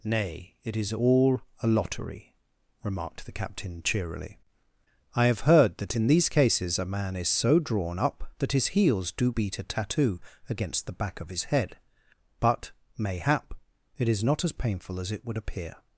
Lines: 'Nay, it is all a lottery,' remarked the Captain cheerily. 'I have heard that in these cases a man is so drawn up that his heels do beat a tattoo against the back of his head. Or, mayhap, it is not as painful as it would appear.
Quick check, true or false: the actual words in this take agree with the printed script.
false